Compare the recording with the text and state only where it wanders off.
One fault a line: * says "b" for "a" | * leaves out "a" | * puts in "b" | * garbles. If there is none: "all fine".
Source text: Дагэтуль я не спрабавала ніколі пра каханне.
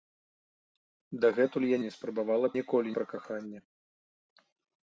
all fine